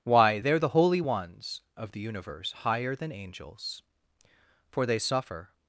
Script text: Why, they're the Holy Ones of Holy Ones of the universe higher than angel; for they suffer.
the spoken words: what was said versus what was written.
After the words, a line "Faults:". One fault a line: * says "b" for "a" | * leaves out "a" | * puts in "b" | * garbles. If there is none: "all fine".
Why, they're the Holy Ones of the universe higher than angels; for they suffer.
Faults:
* leaves out "Holy Ones of"
* says "angels" for "angel"